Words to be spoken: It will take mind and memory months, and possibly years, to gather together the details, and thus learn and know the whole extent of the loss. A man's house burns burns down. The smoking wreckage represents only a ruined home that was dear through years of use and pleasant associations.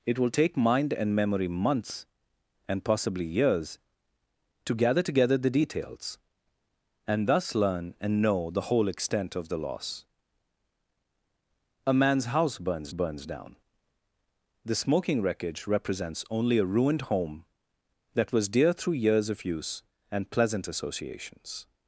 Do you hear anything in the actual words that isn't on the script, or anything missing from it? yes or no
no